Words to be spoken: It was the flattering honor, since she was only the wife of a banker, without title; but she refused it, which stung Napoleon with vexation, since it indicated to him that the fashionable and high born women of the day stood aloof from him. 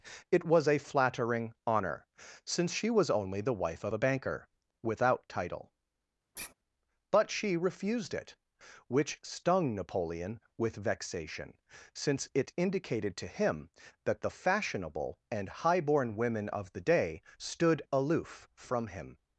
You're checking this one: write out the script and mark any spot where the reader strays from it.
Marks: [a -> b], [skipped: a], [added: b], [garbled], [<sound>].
It was [the -> a] flattering honor, since she was only the wife of a banker, without title; [sigh] but she refused it, which stung Napoleon with vexation, since it indicated to him that the fashionable and high born women of the day stood aloof from him.